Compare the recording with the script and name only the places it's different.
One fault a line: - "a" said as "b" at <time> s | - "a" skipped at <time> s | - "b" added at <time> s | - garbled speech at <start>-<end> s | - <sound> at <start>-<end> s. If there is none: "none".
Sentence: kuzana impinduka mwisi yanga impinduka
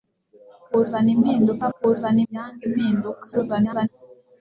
- "mwisi" said as "kuzana" at 1.8 s
- garbled speech at 3.3-3.9 s